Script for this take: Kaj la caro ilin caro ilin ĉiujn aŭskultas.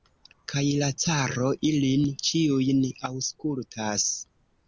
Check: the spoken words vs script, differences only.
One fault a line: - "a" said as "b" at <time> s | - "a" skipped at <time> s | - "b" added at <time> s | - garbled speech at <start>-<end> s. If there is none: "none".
- "caro ilin" skipped at 2.1 s